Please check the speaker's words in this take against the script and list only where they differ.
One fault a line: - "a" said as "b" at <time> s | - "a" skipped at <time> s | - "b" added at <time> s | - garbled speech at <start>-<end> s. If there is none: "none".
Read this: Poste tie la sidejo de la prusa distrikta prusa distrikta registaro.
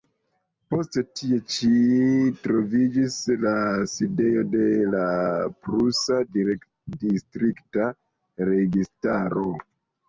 - "ĉi troviĝis" added at 1.6 s
- "prusa distrikta" skipped at 7.9 s